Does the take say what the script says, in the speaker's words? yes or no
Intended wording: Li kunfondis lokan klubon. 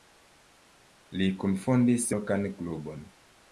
yes